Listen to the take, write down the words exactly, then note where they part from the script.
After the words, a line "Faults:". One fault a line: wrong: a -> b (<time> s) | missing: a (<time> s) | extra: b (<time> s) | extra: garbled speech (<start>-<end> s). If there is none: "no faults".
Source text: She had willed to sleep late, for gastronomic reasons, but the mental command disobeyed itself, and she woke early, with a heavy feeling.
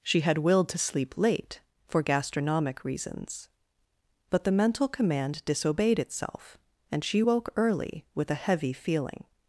She had willed to sleep late, for gastronomic reasons, but the mental command disobeyed itself, and she woke early, with a heavy feeling.
Faults:
no faults